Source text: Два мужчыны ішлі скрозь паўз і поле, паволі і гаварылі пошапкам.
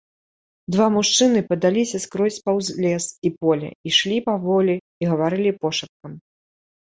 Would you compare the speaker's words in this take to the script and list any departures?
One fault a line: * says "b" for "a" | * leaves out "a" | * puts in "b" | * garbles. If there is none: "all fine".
* says "падаліся" for "ішлі"
* puts in "лес"
* puts in "ішлі"